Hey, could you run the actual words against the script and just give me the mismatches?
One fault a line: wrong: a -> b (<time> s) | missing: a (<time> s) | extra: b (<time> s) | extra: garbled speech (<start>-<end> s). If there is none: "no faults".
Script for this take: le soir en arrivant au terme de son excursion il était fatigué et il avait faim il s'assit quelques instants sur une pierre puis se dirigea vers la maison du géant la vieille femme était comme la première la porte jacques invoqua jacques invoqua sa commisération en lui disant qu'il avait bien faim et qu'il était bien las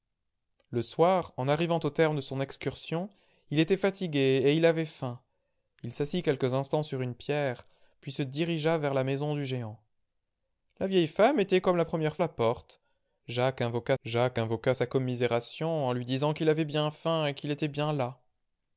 no faults